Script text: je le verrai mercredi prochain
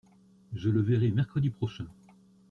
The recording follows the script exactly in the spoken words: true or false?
true